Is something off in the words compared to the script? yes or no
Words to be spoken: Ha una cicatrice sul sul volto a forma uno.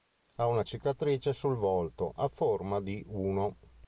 yes